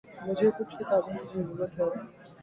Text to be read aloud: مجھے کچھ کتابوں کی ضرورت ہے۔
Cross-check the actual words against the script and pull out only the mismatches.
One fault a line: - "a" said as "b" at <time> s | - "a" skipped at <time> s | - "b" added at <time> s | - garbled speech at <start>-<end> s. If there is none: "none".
none